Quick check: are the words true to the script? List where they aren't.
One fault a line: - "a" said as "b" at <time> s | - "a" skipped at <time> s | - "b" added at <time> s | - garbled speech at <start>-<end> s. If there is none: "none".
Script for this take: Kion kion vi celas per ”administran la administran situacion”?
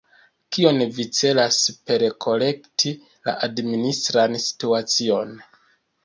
- "kion" skipped at 0.8 s
- "administran" said as "korekti" at 2.2 s